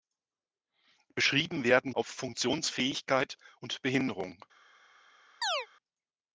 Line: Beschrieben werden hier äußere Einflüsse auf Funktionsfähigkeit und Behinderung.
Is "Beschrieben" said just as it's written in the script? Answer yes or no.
yes